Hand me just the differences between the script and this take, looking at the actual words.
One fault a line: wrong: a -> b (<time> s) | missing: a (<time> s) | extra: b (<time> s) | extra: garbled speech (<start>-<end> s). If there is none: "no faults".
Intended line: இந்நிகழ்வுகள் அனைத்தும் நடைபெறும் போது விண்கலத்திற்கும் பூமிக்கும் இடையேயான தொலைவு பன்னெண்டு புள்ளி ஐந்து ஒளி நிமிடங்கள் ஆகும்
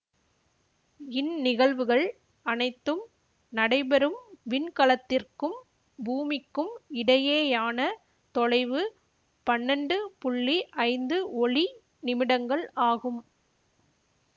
missing: போது (4.2 s)